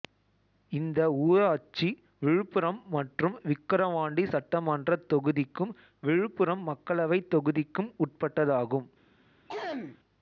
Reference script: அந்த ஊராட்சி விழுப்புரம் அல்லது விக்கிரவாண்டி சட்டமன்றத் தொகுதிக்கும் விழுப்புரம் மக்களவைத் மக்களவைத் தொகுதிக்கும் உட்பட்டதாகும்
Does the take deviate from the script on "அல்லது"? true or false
true